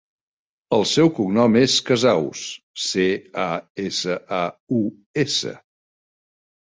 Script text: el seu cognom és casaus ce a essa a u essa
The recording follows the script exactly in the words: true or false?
true